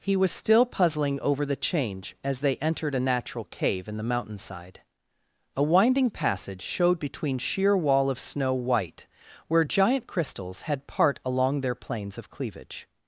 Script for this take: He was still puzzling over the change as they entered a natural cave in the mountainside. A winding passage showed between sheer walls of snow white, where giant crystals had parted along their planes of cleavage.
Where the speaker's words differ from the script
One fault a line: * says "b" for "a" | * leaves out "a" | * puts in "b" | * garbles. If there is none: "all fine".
* says "wall" for "walls"
* says "part" for "parted"